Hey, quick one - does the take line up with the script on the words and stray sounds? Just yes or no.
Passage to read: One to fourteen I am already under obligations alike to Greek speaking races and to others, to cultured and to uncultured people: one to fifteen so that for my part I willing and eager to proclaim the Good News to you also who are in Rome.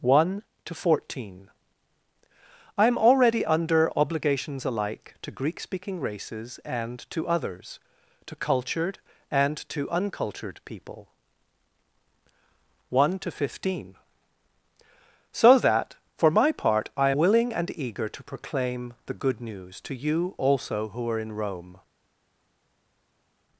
yes